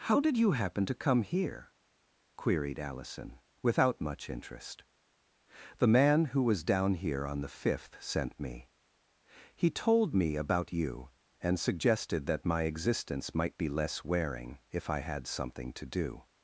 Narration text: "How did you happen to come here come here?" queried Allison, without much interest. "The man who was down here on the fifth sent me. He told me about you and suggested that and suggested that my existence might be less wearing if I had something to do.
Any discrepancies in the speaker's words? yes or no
yes